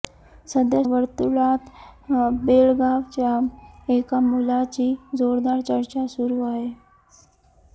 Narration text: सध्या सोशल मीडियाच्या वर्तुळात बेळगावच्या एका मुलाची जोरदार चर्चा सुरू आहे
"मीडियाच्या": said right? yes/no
no